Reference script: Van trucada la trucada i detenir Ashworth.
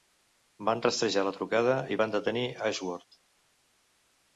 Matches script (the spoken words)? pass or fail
fail